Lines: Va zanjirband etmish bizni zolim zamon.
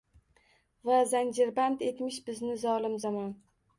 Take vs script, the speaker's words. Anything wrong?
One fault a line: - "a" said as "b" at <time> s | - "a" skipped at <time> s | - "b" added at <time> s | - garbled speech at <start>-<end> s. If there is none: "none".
none